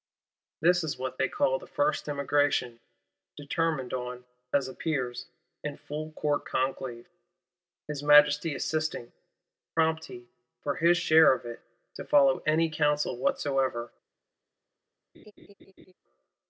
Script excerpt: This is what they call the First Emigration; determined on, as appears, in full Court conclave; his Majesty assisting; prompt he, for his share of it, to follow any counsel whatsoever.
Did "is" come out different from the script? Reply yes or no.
no